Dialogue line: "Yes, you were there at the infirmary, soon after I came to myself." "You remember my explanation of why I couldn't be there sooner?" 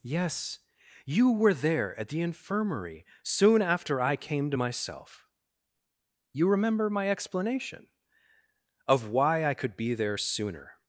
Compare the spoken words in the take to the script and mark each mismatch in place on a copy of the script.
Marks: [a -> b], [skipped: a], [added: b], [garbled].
"Yes, you were there at the infirmary, soon after I came to myself." "You remember my explanation of why I [couldn't -> could] be there sooner?"